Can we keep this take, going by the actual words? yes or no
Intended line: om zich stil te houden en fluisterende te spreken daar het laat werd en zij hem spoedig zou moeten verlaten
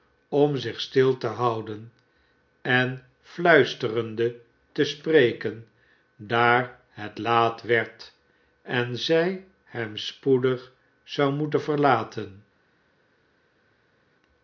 yes